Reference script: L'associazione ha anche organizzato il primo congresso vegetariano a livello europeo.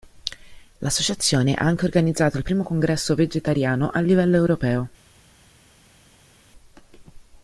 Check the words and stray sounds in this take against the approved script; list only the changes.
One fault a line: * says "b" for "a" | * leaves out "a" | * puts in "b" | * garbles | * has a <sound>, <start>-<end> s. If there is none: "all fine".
all fine